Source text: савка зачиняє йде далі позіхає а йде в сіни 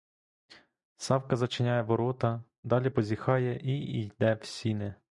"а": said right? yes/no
no